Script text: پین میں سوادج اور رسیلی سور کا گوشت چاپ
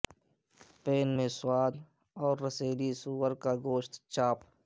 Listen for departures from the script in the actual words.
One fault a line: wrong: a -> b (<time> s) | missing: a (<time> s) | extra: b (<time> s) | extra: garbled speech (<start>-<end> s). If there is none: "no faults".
no faults